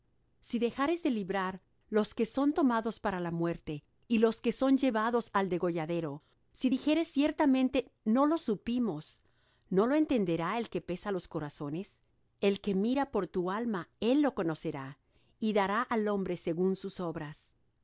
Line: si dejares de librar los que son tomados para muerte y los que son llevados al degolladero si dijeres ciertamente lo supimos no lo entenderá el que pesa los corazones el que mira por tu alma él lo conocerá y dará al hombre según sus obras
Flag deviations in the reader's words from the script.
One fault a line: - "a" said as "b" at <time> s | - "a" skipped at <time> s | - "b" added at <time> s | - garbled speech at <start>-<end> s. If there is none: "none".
- "la" added at 3.2 s
- "no" added at 8.0 s